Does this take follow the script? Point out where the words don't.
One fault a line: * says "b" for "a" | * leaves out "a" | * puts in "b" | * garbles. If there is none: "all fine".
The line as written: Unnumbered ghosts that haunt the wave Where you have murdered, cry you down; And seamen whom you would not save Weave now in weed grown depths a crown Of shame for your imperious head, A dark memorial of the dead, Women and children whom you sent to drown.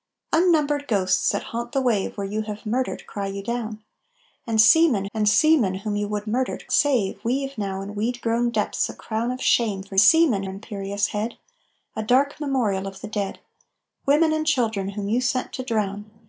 * puts in "And seamen"
* says "murdered" for "not"
* says "seamen" for "your"